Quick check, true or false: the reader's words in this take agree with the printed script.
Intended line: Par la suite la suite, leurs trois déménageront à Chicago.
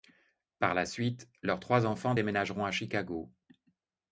false